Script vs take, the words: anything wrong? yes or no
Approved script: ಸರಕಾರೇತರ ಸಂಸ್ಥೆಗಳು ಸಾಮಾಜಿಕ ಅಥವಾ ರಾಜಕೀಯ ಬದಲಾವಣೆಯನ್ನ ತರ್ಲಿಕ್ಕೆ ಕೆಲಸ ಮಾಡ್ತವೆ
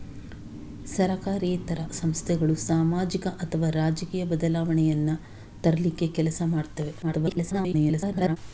yes